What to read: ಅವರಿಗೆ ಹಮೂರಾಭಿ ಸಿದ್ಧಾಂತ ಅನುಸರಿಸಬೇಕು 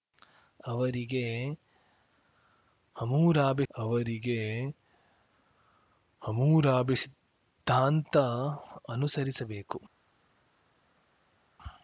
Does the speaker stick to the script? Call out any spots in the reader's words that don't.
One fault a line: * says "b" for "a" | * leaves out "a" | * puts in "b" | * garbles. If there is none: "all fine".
* puts in "ಅವರಿಗೆ ಹಮೂರಾಭಿ"